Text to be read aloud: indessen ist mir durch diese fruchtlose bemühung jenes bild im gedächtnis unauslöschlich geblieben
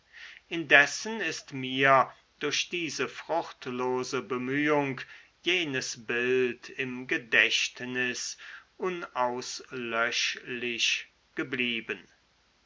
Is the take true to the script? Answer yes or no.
yes